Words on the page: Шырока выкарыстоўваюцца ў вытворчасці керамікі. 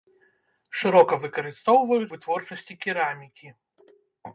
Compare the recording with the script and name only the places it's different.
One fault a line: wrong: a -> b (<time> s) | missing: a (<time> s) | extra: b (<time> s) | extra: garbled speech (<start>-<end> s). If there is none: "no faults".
missing: ў (2.1 s)